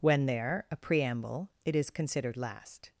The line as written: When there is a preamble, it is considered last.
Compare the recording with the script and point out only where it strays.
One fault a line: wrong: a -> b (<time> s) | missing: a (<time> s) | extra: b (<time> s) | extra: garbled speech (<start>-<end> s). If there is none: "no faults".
missing: is (0.7 s)